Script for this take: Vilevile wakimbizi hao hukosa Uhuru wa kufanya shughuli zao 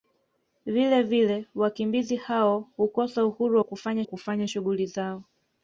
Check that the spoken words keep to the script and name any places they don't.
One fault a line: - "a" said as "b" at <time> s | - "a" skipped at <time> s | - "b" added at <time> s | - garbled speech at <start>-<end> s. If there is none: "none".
- "kufanya" added at 4.0 s